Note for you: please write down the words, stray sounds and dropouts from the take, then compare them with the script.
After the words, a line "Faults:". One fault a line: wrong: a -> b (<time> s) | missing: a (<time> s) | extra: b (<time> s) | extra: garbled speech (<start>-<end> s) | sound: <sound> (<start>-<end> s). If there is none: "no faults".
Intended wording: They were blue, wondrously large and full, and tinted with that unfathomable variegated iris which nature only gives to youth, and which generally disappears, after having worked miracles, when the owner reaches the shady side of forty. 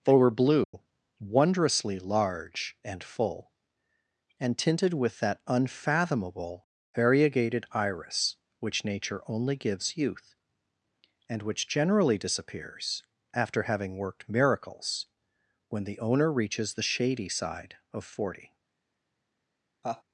They were blue, wondrously large and full, and tinted with that unfathomable variegated iris which nature only gives youth, and which generally disappears, after having worked miracles, when the owner reaches the shady side of forty.
Faults:
sound: dropout (0.6-0.7 s)
missing: to (10.0 s)
sound: laugh (19.8-20.0 s)